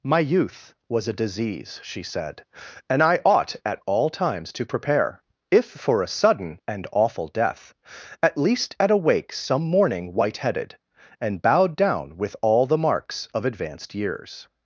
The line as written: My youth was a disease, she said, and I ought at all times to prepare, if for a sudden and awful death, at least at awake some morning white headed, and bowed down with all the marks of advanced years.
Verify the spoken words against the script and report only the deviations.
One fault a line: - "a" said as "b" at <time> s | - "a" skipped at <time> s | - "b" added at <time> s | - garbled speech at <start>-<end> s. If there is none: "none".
none